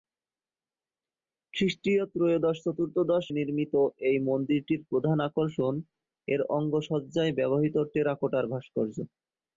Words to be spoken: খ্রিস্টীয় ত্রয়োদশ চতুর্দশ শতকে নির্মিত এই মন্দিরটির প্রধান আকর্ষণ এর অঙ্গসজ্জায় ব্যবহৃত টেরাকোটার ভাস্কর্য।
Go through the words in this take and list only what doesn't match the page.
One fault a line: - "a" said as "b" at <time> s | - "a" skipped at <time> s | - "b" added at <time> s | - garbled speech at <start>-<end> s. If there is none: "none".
- "শতকে" skipped at 3.2 s